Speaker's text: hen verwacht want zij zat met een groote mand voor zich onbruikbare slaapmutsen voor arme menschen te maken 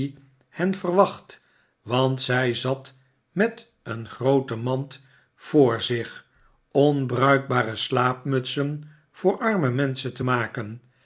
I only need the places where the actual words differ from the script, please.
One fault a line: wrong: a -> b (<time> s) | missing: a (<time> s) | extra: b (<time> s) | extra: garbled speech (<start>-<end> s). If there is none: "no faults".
no faults